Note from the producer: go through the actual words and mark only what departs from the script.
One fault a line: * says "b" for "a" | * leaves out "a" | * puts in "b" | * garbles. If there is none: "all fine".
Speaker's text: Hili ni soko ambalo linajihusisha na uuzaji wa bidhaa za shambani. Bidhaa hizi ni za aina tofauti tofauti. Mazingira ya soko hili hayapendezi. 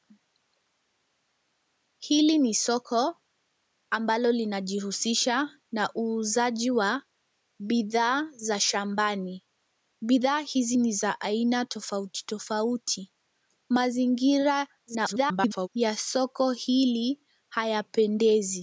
* garbles